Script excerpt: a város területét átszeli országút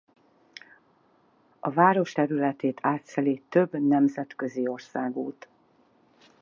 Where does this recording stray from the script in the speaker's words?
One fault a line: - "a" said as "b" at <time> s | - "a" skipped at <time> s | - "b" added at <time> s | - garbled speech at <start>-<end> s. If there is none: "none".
- "több nemzetközi" added at 3.5 s